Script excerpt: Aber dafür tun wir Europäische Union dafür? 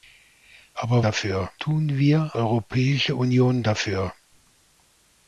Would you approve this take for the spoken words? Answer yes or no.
yes